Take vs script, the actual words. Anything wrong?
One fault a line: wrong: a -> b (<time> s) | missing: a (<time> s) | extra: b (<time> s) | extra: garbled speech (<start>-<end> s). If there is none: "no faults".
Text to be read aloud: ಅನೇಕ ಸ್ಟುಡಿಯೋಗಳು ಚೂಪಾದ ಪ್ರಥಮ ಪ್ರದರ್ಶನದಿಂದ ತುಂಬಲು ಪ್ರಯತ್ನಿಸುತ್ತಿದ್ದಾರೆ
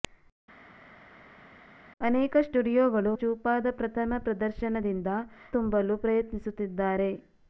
no faults